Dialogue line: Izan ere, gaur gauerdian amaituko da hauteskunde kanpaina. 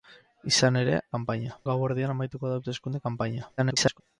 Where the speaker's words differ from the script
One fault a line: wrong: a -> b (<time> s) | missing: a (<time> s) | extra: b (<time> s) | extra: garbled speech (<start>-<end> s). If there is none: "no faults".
wrong: gaur -> kanpaina (1.2 s)
extra: garbled speech (3.6-4.0 s)